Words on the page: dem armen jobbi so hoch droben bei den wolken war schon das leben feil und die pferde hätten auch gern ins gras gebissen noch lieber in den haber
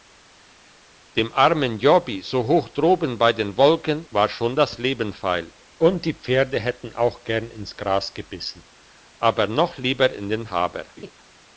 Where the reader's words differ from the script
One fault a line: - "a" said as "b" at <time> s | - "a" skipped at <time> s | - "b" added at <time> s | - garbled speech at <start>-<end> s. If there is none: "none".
- "aber" added at 9.2 s